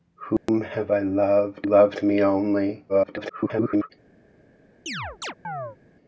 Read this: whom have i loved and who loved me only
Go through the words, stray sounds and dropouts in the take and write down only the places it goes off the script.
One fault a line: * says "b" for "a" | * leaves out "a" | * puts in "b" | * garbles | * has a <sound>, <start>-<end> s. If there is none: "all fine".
* has a dropout, 0.4-0.5 s
* leaves out "and who"
* garbles
* has a chirp, 4.9-5.8 s